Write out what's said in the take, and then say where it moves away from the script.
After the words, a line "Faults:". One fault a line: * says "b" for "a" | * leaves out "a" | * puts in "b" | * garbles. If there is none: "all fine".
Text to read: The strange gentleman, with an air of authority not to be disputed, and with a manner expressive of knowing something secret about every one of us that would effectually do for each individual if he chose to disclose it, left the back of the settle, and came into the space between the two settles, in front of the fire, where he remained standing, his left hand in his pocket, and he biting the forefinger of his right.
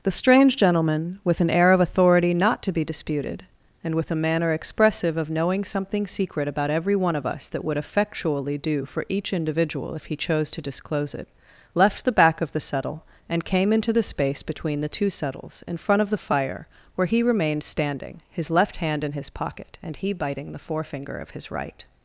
The strange gentleman, with an air of authority not to be disputed, and with a manner expressive of knowing something secret about every one of us that would effectually do for each individual if he chose to disclose it, left the back of the settle, and came into the space between the two settles, in front of the fire, where he remained standing, his left hand in his pocket, and he biting the forefinger of his right.
Faults:
all fine